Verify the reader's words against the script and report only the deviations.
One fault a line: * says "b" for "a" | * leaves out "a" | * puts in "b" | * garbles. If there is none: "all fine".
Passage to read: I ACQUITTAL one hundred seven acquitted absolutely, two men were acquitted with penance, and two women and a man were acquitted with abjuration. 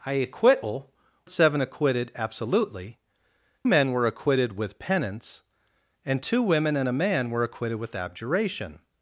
* leaves out "one hundred"
* leaves out "two"